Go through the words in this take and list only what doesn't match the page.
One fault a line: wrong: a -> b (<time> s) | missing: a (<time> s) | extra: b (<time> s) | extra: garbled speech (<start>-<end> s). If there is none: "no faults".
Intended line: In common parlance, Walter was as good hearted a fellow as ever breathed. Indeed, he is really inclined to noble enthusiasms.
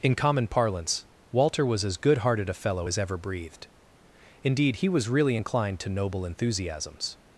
wrong: is -> was (4.9 s)